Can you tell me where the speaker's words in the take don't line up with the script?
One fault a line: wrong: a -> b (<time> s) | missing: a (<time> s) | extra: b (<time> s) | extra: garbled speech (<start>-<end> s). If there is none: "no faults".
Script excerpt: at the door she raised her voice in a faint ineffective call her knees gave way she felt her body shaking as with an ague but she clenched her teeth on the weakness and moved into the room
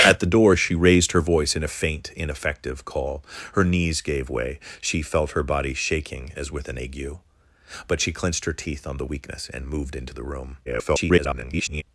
extra: garbled speech (10.6-11.8 s)